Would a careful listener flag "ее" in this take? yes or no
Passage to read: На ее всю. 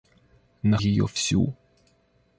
no